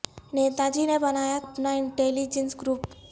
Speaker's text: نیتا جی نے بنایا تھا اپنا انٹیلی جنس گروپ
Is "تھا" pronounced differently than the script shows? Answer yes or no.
yes